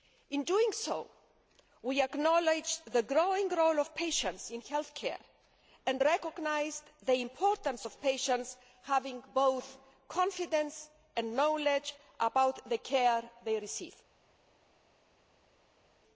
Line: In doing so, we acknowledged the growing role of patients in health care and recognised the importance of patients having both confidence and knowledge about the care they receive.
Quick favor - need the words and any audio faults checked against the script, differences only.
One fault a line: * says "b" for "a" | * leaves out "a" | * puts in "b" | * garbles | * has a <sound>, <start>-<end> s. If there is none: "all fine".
all fine